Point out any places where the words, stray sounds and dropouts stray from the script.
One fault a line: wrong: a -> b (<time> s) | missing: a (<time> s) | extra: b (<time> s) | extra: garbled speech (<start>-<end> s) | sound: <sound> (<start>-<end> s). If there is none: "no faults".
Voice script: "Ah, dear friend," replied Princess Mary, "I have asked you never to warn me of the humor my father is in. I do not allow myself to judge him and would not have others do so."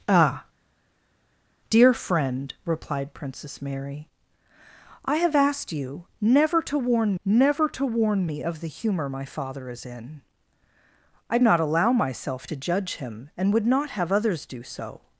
extra: never to warn (7.2 s)
missing: do (11.4 s)